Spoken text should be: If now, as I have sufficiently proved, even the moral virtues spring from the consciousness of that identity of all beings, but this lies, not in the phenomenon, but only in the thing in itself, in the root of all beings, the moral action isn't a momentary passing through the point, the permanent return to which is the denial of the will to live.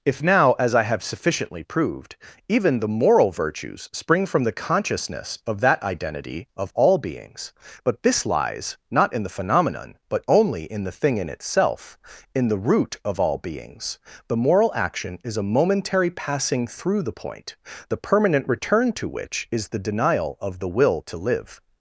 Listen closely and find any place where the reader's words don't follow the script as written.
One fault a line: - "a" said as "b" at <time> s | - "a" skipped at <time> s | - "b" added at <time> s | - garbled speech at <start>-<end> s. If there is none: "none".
- "isn't" said as "is" at 15.2 s